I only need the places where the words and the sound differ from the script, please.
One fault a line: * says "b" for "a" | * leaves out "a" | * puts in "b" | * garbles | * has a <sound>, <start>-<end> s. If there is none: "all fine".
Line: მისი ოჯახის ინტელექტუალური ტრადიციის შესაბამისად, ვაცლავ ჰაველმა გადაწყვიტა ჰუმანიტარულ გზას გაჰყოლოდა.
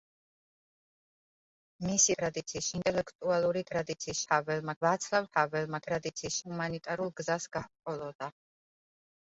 * says "ტრადიციის" for "ოჯახის"
* says "ჰაველმა" for "შესაბამისად"
* says "ტრადიციის" for "გადაწყვიტა"